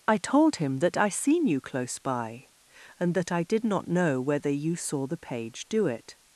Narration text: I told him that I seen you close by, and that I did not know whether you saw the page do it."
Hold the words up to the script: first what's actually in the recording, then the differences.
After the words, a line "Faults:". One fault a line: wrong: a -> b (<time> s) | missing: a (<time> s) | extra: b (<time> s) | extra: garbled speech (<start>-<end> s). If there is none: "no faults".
I told him that I seen you close by, and that I did not know whether you saw the page do it."
Faults:
no faults